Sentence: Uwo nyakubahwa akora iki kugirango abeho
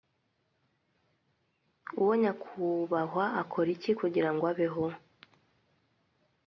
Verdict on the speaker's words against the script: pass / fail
pass